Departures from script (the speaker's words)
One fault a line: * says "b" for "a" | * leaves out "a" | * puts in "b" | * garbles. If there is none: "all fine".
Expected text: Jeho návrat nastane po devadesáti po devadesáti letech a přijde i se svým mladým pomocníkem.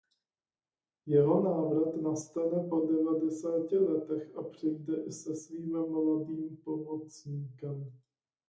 * leaves out "po devadesáti"